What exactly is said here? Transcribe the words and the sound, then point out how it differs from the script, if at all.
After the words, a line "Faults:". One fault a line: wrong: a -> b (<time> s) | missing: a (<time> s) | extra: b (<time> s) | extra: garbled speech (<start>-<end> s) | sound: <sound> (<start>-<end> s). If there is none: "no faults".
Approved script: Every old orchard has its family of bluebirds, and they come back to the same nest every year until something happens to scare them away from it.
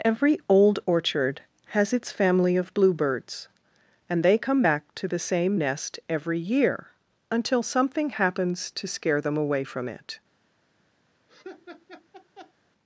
Every old orchard has its family of bluebirds, and they come back to the same nest every year until something happens to scare them away from it.
Faults:
sound: laugh (11.3-12.5 s)